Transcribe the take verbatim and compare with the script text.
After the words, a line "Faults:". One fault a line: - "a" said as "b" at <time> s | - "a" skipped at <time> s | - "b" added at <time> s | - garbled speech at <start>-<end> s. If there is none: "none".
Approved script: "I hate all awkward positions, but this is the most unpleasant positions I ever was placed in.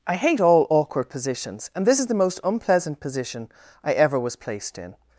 "I hate all awkward positions, and this is the most unpleasant position I ever was placed in.
Faults:
- "but" said as "and" at 1.7 s
- "positions" said as "position" at 3.0 s